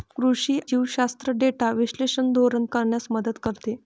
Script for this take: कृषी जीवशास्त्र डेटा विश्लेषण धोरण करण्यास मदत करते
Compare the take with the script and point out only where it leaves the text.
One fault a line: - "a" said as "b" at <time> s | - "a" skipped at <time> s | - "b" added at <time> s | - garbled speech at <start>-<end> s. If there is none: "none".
none